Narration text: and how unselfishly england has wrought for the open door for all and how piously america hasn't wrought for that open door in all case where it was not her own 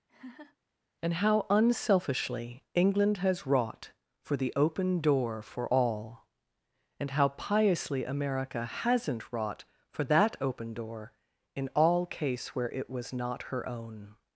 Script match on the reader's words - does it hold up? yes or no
yes